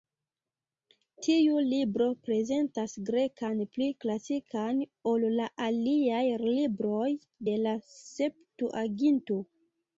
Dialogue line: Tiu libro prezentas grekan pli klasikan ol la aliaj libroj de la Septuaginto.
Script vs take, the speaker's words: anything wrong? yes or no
no